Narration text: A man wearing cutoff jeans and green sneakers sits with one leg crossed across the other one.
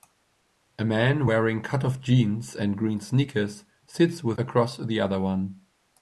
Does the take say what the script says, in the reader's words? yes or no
no